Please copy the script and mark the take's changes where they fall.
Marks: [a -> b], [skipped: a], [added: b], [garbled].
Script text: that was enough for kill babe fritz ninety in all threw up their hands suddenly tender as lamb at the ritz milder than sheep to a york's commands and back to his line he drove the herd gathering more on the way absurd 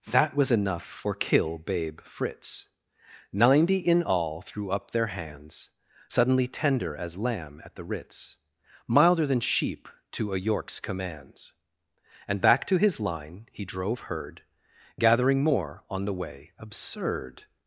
that was enough for kill babe fritz ninety in all threw up their hands suddenly tender as lamb at the ritz milder than sheep to a york's commands and back to his line he drove [skipped: the] herd gathering more on the way absurd